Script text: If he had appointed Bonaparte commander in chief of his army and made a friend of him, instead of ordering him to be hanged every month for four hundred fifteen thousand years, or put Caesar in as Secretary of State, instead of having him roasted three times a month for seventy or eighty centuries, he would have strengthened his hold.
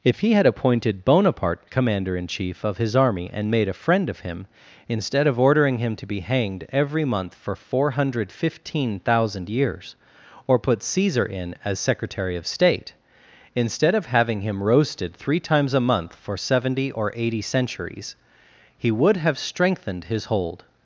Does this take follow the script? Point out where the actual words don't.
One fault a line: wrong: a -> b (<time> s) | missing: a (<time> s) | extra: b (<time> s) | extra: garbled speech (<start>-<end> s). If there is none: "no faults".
no faults